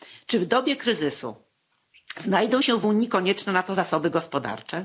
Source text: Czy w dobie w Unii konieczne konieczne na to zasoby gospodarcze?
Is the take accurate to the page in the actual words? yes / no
no